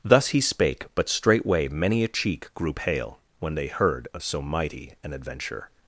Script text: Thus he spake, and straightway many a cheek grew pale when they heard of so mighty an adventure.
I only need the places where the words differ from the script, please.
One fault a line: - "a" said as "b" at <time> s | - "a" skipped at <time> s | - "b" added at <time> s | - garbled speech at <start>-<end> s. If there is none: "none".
- "and" said as "but" at 0.9 s